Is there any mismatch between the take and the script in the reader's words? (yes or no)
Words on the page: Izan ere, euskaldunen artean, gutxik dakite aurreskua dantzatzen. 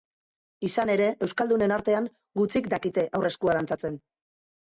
no